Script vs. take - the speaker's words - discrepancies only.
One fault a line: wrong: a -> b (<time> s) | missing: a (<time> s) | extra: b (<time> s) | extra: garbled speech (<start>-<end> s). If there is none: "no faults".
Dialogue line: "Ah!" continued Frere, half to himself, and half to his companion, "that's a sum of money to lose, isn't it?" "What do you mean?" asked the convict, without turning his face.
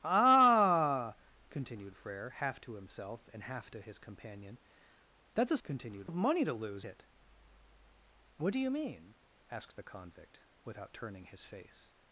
wrong: sum -> continued (5.6 s)
missing: isn't (6.8 s)